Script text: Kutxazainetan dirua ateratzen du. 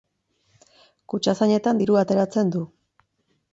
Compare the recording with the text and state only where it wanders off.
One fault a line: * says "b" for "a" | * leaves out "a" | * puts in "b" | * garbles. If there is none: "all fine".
all fine